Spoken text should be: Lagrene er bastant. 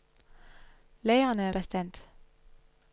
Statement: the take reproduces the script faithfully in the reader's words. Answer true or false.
true